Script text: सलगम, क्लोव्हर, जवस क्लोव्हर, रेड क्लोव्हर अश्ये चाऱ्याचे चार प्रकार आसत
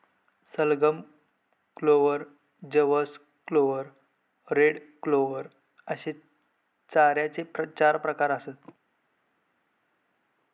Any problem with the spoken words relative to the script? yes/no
no